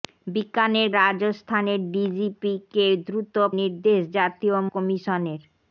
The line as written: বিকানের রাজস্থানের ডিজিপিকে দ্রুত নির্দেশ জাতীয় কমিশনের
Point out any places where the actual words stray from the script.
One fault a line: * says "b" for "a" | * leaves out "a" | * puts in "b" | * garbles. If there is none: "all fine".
all fine